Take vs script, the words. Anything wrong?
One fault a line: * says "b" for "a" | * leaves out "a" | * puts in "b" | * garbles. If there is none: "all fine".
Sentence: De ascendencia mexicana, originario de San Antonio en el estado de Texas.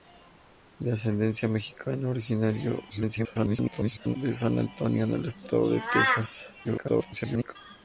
* garbles
* garbles